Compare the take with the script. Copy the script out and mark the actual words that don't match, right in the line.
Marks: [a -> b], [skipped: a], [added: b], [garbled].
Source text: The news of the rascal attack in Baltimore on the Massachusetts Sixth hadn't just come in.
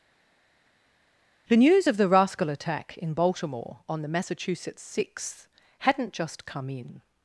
The news of the rascal attack in Baltimore on the Massachusetts Sixth hadn't just come in.